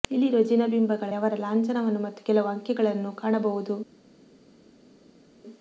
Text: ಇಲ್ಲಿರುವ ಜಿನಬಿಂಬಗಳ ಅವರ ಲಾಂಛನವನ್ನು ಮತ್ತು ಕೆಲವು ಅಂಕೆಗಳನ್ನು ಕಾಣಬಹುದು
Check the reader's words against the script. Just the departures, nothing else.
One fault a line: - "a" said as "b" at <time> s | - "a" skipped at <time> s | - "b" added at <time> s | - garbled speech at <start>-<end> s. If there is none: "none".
none